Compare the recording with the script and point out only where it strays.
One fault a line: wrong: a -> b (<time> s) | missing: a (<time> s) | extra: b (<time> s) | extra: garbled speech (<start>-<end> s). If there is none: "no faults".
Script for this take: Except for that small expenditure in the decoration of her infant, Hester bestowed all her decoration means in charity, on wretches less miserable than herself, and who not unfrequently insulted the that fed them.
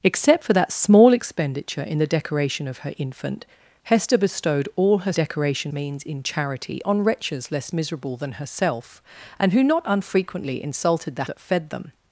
no faults